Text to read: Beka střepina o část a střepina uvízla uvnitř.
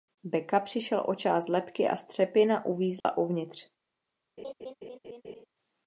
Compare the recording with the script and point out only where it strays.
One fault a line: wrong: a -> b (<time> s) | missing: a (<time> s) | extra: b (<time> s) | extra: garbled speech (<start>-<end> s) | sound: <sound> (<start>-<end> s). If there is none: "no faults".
wrong: střepina -> přišel (0.6 s)
extra: lebky (1.5 s)
sound: dropout (3.0-3.0 s)
sound: laugh (4.4-5.5 s)